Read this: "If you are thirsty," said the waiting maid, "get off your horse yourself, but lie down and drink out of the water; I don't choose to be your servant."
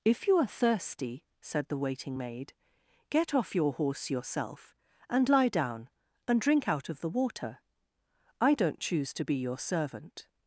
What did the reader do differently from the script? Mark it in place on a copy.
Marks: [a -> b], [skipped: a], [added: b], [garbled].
"If you are thirsty," said the waiting maid, "get off your horse yourself, [but -> and] lie down and drink out of the water; I don't choose to be your servant."